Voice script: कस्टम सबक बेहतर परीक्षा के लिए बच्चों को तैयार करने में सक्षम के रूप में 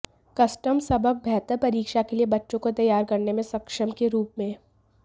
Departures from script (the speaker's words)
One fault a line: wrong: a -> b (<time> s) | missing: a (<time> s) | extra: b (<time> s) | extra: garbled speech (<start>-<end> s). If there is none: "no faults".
no faults